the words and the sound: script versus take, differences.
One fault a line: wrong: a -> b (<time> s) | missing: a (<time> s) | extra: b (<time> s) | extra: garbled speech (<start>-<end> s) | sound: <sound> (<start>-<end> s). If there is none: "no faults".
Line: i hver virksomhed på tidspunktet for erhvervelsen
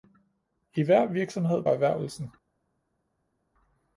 missing: på tidspunktet for (1.6 s)